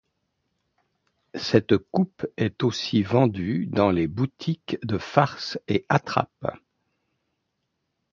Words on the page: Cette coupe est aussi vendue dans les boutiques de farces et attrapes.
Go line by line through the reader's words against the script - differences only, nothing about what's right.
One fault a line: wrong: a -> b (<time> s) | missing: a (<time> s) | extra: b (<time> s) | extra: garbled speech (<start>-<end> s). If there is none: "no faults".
no faults